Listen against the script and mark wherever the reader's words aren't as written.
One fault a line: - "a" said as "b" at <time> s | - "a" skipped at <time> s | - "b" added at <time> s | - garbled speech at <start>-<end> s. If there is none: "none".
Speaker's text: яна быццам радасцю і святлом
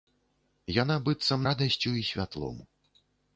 none